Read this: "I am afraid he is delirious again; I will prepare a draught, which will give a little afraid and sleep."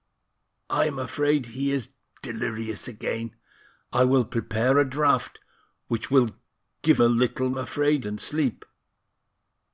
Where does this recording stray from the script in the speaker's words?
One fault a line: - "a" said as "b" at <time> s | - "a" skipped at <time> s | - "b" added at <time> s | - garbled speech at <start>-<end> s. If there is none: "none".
none